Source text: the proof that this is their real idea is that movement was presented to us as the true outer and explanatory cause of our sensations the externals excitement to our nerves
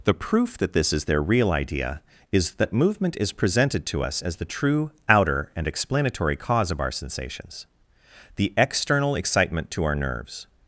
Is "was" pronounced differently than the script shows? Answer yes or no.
yes